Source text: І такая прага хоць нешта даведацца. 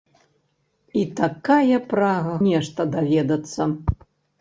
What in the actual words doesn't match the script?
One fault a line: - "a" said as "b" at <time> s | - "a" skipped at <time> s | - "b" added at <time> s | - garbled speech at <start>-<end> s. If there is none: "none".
- "хоць" skipped at 2.3 s